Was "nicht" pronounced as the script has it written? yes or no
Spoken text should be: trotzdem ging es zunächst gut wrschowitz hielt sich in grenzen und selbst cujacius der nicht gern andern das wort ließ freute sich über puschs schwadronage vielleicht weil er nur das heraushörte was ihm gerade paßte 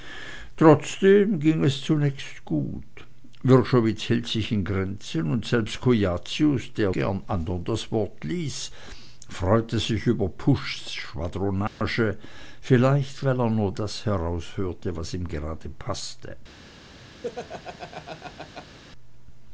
no